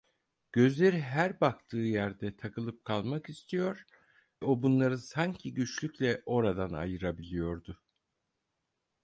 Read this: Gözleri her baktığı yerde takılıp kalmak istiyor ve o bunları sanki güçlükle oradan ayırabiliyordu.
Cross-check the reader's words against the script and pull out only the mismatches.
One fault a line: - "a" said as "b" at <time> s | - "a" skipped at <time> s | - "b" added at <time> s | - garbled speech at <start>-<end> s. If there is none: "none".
- "ve" skipped at 3.9 s